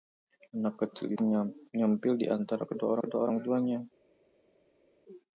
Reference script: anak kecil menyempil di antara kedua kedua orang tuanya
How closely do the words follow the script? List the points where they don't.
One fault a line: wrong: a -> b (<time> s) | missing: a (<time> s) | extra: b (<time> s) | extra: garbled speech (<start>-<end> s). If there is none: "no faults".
no faults